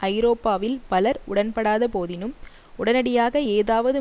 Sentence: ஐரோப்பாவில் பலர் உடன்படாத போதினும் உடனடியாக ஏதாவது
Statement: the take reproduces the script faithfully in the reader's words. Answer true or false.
true